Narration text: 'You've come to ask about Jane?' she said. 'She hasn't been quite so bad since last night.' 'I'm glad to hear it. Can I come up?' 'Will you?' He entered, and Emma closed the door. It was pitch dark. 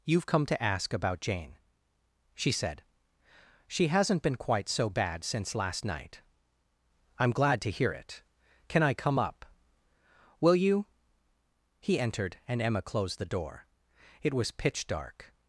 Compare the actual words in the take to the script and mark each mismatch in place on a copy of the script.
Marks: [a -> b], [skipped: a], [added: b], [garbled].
'You've come to ask about Jane?' she said. 'She hasn't been quite so bad since last night.' 'I'm glad to hear it. Can I come up?' 'Will you?' He entered, and Emma closed the door. It was pitch dark.